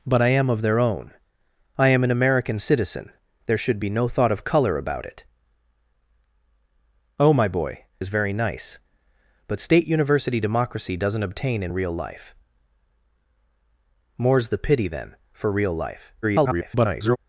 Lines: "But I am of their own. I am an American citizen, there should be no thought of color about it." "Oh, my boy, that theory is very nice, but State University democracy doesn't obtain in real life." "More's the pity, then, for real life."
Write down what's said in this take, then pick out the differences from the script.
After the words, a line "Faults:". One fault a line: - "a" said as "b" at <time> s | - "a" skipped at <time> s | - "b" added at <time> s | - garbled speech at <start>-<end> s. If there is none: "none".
"But I am of their own. I am an American citizen, there should be no thought of color about it." "Oh, my boy, is very nice, but State University democracy doesn't obtain in real life." "More's the pity, then, for real life." [garbled]
Faults:
- "that theory" skipped at 7.8 s
- garbled speech at 16.2-17.2 s